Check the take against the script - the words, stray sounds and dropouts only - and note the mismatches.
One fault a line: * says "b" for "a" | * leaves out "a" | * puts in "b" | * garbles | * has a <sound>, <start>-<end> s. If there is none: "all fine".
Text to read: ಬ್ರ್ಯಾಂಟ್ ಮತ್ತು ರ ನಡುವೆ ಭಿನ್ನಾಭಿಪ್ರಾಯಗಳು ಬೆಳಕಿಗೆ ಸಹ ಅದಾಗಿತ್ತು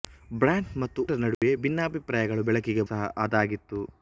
* has a dropout, 1.3-1.4 s